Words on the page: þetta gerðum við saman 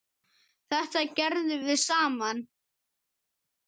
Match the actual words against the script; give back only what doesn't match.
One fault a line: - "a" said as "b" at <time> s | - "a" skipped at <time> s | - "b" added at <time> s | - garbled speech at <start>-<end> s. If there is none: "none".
none